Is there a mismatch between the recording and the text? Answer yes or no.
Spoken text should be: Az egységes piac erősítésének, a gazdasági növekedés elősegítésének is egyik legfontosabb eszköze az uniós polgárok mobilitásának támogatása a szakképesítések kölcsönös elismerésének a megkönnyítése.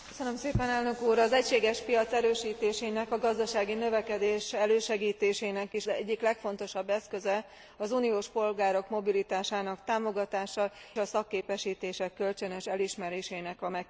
no